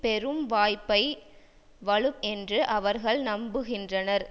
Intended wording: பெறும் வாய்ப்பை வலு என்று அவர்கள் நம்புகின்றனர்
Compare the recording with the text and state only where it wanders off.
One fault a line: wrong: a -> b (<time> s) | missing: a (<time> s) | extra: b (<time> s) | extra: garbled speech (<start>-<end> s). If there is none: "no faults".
no faults